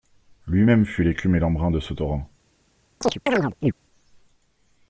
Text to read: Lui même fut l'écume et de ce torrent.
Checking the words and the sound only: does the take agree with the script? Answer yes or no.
no